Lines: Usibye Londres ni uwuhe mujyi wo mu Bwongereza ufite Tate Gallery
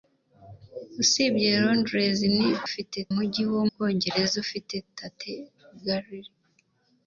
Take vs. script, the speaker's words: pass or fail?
fail